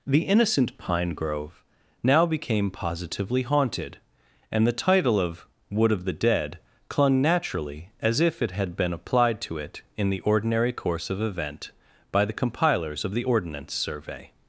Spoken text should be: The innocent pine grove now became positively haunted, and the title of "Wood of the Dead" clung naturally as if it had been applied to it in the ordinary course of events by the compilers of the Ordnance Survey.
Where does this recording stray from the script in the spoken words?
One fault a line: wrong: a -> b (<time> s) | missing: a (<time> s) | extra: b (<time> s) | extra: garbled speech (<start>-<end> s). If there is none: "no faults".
wrong: events -> event (11.2 s)